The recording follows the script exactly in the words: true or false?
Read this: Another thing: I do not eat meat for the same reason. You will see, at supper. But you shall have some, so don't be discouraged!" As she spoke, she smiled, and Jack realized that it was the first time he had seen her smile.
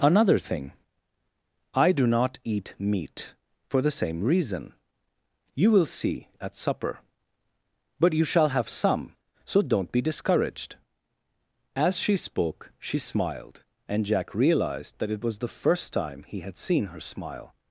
true